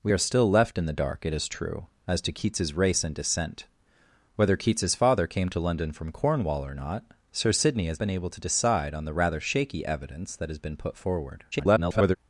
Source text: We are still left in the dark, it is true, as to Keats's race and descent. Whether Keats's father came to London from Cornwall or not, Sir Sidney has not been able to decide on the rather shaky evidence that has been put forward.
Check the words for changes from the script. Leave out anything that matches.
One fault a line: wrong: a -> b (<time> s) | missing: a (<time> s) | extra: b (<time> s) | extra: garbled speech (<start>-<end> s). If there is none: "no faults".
missing: not (8.0 s)
extra: garbled speech (11.5-12.2 s)